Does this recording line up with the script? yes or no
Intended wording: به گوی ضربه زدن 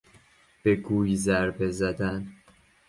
yes